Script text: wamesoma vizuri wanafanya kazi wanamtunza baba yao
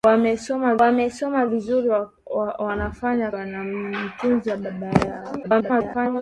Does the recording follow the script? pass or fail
fail